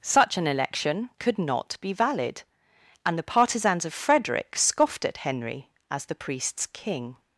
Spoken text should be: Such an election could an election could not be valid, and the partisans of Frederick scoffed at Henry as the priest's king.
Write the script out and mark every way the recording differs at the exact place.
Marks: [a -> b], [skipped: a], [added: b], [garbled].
Such an election could [skipped: an election could] not be valid, and the partisans of Frederick scoffed at Henry as the priest's king.